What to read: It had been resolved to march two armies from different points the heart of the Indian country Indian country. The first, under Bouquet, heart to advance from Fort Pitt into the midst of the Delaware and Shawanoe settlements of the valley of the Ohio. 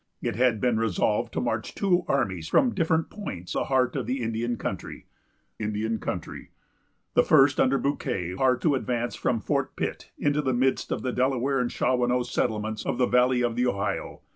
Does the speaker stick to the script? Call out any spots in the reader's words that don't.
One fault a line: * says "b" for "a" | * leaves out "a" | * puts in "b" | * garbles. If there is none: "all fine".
all fine